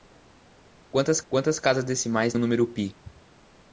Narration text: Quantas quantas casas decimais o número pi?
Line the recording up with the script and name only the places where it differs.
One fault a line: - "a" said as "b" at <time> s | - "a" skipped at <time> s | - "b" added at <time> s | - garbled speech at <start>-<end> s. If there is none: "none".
none